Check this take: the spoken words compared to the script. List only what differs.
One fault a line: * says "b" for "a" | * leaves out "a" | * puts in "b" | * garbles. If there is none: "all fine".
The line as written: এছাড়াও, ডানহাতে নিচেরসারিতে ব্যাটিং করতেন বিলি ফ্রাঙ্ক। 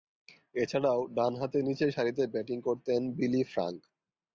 all fine